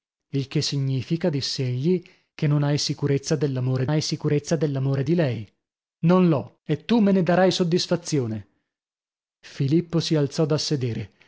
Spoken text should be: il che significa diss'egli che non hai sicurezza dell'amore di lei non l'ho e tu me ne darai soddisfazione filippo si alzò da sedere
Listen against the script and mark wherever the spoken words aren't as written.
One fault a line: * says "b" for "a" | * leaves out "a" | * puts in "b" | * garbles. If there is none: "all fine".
* puts in "hai sicurezza dell'amore"